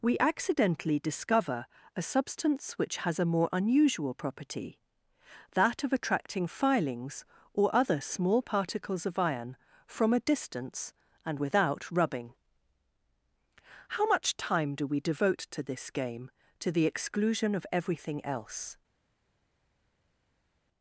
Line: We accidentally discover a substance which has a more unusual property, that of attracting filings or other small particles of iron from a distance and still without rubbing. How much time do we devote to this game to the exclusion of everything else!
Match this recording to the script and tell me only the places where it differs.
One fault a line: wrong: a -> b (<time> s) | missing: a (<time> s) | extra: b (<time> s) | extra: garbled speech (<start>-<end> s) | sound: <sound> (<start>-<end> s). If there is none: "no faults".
missing: still (11.4 s)